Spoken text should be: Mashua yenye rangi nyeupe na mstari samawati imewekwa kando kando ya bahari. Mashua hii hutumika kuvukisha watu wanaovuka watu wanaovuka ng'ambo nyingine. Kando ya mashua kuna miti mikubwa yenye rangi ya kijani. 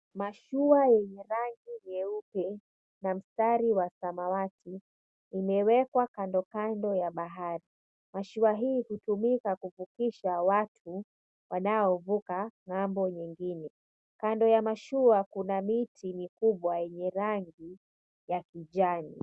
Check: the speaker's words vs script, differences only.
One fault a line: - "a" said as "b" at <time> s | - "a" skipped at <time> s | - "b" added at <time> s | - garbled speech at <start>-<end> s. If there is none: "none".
- "wa" added at 3.7 s
- "watu wanaovuka" skipped at 12.5 s